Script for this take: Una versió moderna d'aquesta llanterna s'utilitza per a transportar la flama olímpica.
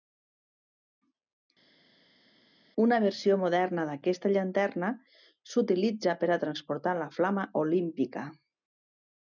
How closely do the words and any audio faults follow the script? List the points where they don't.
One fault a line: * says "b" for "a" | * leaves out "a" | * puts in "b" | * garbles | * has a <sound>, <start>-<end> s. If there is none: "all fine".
all fine